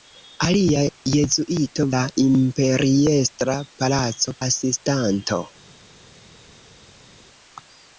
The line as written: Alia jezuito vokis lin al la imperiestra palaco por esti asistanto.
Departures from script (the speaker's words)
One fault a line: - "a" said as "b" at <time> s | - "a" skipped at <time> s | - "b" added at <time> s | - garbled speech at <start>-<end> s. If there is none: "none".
- "vokis lin al" skipped at 1.9 s
- "por esti" skipped at 4.4 s